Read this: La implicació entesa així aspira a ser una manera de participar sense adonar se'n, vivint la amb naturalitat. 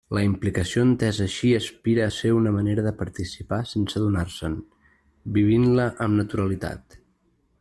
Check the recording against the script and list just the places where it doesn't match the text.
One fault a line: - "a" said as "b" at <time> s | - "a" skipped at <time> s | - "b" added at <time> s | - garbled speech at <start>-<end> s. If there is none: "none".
none